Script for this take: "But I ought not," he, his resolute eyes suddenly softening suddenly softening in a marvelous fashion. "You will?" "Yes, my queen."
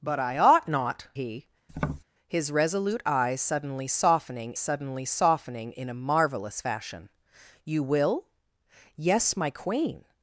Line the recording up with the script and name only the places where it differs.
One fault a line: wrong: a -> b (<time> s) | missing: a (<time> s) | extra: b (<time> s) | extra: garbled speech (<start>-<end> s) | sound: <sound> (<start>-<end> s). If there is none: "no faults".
sound: tap (1.7-2.0 s)